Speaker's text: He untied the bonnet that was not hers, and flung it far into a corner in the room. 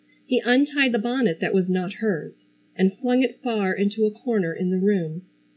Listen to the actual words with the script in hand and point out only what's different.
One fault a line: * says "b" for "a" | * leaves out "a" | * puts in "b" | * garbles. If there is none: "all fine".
all fine